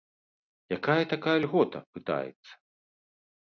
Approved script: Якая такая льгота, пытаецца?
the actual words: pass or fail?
pass